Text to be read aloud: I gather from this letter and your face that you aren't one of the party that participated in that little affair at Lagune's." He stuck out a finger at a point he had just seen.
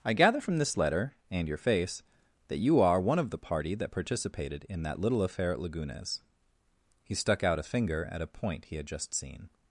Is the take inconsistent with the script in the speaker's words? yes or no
yes